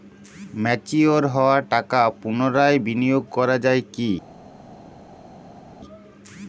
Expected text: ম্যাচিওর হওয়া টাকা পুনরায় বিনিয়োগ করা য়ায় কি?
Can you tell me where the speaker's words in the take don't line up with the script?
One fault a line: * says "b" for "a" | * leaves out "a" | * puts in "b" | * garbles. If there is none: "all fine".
all fine